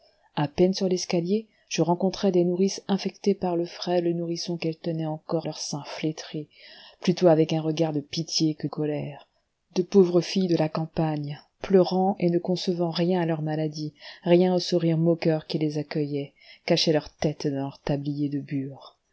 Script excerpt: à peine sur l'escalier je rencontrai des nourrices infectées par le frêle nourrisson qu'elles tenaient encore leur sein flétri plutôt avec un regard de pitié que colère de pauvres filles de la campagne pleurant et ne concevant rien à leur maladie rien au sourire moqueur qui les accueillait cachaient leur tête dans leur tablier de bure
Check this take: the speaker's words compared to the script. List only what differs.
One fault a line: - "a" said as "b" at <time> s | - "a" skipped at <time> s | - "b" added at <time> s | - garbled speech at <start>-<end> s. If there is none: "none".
none